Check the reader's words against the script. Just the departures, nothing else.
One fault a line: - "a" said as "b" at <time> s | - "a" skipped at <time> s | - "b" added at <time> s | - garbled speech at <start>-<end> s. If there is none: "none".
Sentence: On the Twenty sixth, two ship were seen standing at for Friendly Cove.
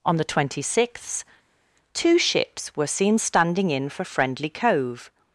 - "ship" said as "ships" at 2.2 s
- "at" said as "in" at 3.7 s